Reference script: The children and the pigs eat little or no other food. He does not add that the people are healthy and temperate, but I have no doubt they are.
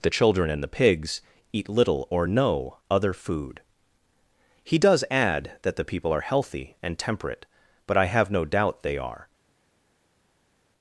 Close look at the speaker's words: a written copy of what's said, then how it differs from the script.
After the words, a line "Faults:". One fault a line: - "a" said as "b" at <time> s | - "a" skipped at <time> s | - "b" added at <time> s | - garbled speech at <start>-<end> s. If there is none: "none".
The children and the pigs eat little or no other food. He does add that the people are healthy and temperate, but I have no doubt they are.
Faults:
- "not" skipped at 5.0 s